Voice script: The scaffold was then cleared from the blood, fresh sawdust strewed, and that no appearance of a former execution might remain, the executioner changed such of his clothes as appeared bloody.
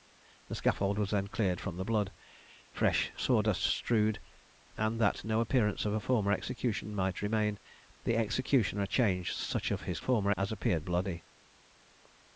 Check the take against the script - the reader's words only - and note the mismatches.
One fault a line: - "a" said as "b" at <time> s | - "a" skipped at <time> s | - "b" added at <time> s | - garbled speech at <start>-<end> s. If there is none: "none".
- "clothes" said as "former" at 10.0 s